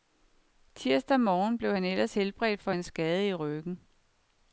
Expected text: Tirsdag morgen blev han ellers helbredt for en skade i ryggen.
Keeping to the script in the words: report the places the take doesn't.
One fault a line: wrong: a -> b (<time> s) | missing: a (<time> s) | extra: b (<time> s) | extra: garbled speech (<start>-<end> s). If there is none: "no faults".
no faults